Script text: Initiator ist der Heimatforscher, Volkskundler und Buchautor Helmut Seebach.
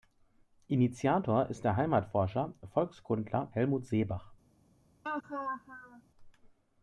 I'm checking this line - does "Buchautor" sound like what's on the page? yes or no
no